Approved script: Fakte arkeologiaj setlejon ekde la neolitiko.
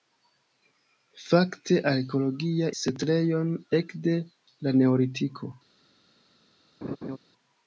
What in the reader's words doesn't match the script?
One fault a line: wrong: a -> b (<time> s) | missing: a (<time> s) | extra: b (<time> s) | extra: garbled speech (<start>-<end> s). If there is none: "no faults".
no faults